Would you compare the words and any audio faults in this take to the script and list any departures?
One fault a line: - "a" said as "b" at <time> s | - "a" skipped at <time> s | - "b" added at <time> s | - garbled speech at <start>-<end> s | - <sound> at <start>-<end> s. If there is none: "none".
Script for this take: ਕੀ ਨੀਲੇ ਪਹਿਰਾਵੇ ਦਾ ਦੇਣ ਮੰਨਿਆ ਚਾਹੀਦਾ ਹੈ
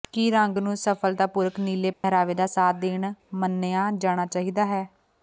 - "ਰੰਗ ਨੂੰ ਸਫਲਤਾਪੂਰਕ" added at 0.3 s
- dropout at 1.9-2.0 s
- "ਸਾਥ" added at 2.4 s
- "ਜਾਣਾ" added at 4.0 s